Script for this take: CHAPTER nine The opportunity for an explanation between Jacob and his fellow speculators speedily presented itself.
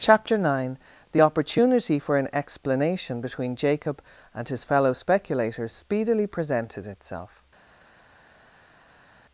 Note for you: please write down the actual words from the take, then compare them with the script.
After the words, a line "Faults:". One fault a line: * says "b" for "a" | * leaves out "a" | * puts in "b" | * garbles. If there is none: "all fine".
CHAPTER nine The opportunity for an explanation between Jacob and his fellow speculators speedily presented itself.
Faults:
all fine